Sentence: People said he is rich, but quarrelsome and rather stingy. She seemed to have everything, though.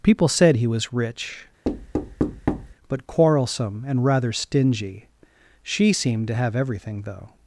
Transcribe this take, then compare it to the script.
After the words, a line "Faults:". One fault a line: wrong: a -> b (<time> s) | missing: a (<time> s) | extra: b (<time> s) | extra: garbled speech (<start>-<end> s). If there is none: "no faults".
People said he was rich, but quarrelsome and rather stingy. She seemed to have everything, though.
Faults:
wrong: is -> was (0.7 s)